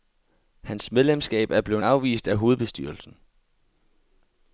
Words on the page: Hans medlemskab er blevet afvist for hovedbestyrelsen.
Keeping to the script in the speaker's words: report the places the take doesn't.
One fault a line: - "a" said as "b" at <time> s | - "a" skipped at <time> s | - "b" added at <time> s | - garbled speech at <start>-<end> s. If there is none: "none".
- "for" said as "af" at 2.3 s